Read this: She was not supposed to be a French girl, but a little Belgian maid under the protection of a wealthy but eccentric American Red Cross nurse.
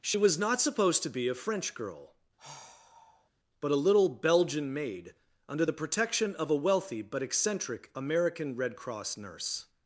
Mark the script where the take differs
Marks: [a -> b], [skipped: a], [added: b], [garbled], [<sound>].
She was not supposed to be a French girl, [sigh] but a little Belgian maid under the protection of a wealthy but eccentric American Red Cross nurse.